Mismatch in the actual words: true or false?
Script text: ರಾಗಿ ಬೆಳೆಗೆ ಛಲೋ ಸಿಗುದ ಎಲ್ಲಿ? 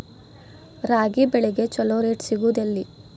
true